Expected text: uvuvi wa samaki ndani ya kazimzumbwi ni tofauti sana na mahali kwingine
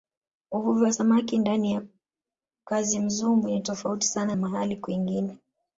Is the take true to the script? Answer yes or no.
no